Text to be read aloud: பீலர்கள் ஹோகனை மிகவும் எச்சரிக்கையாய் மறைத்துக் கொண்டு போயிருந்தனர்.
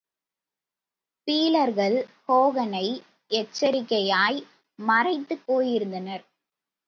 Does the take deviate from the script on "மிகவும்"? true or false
true